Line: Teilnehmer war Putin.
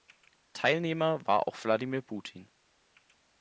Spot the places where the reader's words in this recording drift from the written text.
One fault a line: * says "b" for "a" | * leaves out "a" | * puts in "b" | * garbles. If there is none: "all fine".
* puts in "auch Wladimir"